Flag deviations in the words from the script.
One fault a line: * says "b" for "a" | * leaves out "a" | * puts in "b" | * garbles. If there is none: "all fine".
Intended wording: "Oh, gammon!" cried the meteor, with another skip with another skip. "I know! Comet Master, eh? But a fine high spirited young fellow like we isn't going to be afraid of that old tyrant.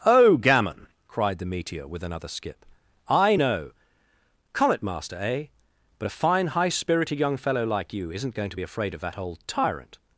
* leaves out "with another skip"
* says "you" for "we"